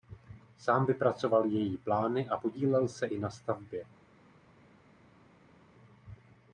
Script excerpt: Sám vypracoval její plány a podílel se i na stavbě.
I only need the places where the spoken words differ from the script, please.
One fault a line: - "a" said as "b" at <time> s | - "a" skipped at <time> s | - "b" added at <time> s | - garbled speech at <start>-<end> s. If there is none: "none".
none